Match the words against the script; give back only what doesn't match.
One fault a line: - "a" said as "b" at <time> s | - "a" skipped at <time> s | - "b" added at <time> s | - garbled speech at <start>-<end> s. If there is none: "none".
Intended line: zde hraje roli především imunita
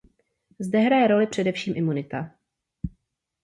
none